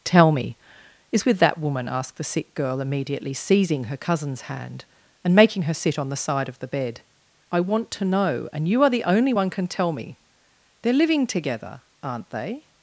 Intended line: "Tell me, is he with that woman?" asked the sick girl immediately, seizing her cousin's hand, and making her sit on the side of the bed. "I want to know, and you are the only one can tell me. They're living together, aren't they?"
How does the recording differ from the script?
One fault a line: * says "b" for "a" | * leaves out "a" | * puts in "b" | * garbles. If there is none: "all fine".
* leaves out "he"